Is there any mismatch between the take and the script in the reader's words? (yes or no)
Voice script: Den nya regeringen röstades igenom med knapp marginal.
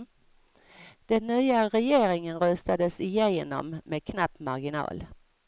no